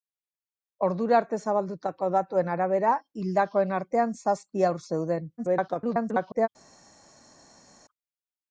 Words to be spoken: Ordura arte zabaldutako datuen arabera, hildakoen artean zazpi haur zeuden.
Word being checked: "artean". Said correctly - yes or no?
yes